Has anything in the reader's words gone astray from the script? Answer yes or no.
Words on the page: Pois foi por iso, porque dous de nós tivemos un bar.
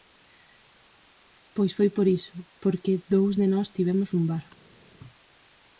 no